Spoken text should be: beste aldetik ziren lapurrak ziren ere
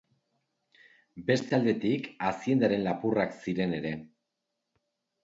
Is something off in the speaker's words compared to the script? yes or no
yes